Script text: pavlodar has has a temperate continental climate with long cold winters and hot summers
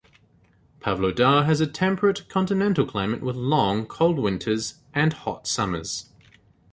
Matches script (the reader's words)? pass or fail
fail